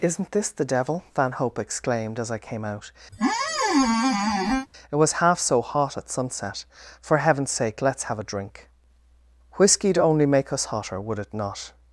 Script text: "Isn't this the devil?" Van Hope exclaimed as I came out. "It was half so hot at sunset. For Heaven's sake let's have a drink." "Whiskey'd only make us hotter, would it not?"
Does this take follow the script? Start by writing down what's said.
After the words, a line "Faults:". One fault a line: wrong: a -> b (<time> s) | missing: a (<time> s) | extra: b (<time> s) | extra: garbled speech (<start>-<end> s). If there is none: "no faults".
"Isn't this the devil?" Van Hope exclaimed as I came out. "It was half so hot at sunset. For Heaven's sake let's have a drink." "Whiskey'd only make us hotter, would it not?"
Faults:
no faults